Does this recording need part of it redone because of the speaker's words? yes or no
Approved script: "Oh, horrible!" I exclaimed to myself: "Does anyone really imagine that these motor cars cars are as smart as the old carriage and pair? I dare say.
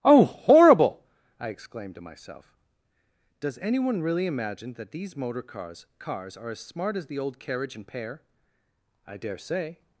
no